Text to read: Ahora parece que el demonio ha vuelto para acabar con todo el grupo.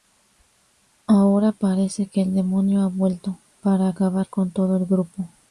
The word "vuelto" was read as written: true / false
true